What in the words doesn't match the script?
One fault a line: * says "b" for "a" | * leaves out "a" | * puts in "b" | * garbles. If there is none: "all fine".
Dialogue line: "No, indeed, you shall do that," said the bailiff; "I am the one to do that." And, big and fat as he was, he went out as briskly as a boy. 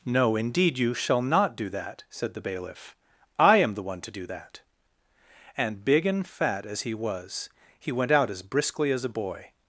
* puts in "not"